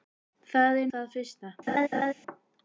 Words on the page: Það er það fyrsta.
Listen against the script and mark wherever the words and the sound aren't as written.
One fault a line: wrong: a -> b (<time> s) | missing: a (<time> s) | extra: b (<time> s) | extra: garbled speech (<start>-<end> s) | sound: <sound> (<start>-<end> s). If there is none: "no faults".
sound: laugh (1.7-2.1 s)